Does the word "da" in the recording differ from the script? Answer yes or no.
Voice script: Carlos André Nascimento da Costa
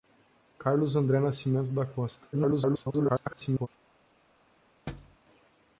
no